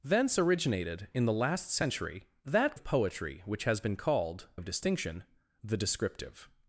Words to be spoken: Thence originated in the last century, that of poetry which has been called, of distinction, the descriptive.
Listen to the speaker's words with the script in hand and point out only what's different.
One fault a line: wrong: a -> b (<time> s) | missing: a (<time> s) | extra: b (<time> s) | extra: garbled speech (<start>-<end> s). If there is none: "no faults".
no faults